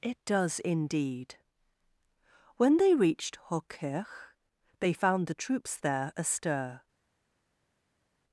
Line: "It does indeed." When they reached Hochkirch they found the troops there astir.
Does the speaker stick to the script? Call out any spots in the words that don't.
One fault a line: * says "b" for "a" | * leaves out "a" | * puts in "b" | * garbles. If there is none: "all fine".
all fine